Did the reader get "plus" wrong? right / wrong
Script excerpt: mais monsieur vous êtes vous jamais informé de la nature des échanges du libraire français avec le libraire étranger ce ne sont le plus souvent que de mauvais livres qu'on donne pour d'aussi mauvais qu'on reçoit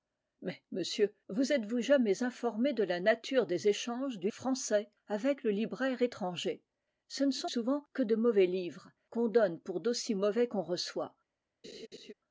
wrong